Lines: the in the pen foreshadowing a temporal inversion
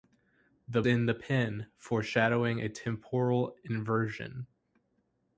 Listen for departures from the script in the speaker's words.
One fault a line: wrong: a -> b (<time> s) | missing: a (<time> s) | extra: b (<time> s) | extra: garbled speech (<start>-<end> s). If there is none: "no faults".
no faults